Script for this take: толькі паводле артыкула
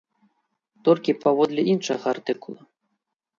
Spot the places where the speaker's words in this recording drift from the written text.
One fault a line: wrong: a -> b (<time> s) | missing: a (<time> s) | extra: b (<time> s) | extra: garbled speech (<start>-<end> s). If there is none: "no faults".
extra: іншага (1.7 s)